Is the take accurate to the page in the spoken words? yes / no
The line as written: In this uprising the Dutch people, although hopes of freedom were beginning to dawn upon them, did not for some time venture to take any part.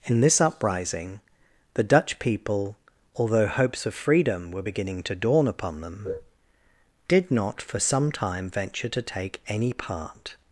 yes